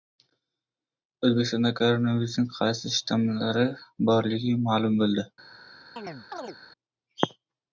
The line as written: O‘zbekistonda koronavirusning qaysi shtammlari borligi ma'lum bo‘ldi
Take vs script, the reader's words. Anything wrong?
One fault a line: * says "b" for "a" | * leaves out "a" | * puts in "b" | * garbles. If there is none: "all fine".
all fine